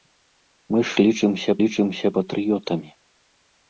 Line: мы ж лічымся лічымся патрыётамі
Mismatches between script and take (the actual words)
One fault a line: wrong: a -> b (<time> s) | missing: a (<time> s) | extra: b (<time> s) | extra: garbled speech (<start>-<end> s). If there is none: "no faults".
no faults